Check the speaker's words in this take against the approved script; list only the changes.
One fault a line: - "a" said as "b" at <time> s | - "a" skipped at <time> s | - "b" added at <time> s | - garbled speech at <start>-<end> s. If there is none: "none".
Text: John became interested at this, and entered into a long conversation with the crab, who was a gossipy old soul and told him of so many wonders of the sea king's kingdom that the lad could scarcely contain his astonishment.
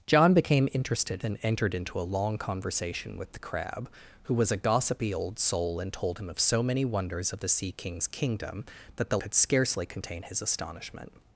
- "at this" skipped at 1.2 s
- "lad" skipped at 9.2 s